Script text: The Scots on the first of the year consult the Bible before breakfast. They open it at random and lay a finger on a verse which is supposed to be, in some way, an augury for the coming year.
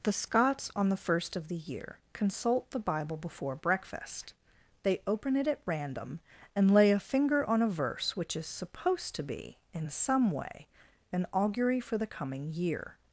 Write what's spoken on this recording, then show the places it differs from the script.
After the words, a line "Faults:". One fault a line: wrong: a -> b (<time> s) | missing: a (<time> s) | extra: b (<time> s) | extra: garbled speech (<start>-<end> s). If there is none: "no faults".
The Scots on the first of the year consult the Bible before breakfast. They open it at random and lay a finger on a verse which is supposed to be, in some way, an augury for the coming year.
Faults:
no faults